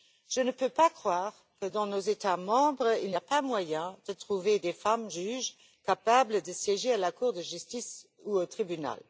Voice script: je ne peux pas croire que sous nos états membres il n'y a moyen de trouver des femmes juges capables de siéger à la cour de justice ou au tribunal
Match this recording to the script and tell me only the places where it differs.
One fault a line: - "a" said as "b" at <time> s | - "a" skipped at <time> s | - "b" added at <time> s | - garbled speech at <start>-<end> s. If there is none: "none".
- "sous" said as "dans" at 1.6 s
- "pas" added at 3.2 s